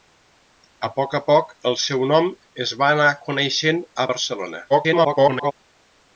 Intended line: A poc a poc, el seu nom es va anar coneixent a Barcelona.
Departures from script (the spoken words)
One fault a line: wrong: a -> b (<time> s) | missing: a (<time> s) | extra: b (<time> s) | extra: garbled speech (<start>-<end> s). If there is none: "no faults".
extra: garbled speech (4.7-5.5 s)